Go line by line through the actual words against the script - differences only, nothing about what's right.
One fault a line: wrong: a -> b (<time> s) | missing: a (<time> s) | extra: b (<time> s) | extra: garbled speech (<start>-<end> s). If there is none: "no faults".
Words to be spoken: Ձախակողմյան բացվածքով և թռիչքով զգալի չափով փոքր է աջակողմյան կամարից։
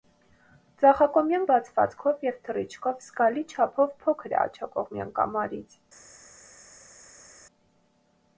no faults